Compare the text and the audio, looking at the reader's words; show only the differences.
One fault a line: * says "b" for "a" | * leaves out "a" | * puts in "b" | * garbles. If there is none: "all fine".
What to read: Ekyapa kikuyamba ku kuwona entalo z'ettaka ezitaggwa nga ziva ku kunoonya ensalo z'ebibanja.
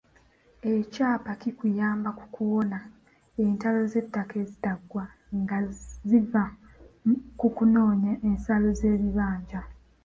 all fine